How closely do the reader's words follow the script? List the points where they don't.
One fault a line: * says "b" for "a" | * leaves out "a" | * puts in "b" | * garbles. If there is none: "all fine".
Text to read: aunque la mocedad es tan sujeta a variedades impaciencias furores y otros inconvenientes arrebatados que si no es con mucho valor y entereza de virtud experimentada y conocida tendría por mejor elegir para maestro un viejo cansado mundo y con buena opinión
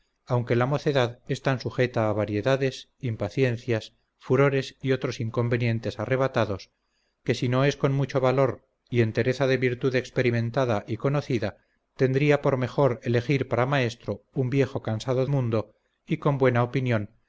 all fine